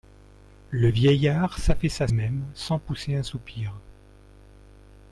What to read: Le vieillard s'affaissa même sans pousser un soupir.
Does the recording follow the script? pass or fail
pass